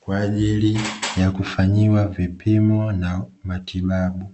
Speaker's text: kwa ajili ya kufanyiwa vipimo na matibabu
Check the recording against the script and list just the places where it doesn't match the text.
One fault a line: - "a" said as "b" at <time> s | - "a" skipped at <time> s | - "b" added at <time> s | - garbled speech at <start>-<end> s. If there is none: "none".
none